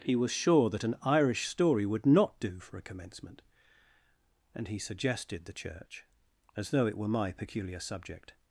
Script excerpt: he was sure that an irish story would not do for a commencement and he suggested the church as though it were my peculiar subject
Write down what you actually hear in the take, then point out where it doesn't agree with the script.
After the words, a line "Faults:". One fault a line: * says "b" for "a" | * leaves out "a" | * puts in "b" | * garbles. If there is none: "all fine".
he was sure that an irish story would not do for a commencement and he suggested the church as though it were my peculiar subject
Faults:
all fine